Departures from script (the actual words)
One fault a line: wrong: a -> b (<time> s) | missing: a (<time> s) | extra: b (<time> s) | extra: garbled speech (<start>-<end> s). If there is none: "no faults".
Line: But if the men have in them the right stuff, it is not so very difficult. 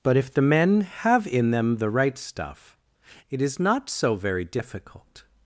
no faults